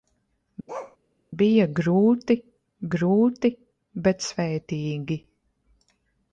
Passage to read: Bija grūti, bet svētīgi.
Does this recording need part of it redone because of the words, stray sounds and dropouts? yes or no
yes